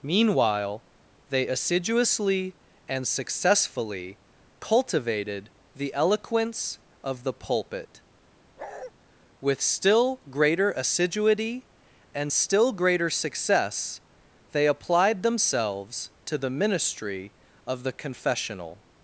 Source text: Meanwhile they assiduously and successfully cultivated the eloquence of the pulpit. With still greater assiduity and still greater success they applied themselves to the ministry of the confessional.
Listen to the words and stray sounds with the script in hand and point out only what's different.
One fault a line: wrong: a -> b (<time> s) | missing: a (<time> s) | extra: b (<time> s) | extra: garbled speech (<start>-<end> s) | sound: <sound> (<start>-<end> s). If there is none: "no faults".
sound: bark (8.6-8.9 s)